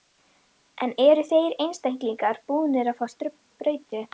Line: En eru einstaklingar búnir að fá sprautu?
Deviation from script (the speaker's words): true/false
true